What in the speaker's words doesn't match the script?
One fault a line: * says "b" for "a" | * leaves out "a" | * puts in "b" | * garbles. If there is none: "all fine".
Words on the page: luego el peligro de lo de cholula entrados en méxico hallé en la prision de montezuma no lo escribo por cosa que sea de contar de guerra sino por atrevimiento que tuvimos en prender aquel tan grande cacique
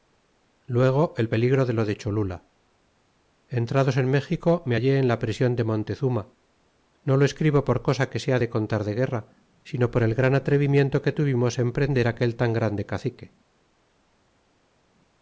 * puts in "me"
* puts in "el gran"